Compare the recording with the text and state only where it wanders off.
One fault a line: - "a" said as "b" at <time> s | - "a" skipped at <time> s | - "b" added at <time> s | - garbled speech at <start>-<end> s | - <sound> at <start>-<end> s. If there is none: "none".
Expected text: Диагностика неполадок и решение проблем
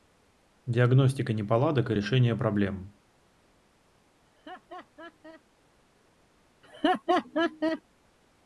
- laugh at 4.3-5.4 s
- laugh at 6.6-7.8 s